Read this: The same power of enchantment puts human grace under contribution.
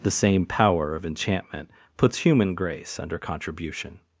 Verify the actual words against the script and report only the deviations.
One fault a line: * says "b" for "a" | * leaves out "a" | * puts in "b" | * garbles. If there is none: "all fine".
all fine